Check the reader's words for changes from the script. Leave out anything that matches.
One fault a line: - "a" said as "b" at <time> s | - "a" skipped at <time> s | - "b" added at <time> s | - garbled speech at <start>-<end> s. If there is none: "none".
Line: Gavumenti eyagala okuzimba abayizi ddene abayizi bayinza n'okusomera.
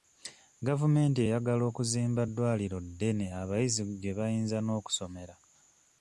- "abayizi" said as "ddwaliro" at 2.3 s
- "gye" added at 4.0 s